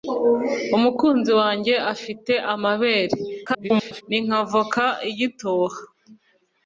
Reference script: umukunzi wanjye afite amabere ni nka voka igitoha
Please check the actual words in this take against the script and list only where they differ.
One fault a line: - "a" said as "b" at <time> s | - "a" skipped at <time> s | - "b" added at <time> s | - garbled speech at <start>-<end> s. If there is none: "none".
- garbled speech at 3.5-4.0 s